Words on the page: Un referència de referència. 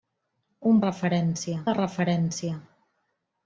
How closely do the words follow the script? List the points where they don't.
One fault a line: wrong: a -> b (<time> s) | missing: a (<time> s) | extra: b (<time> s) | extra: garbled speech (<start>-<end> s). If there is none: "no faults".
no faults